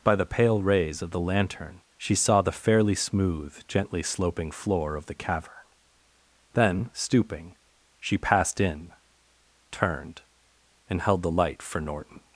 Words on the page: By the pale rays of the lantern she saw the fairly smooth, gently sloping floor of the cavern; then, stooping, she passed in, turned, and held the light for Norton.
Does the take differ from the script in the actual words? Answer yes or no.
no